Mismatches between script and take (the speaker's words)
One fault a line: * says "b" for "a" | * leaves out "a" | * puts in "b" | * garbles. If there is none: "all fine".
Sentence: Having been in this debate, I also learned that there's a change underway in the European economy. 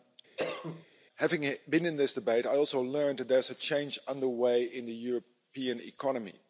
all fine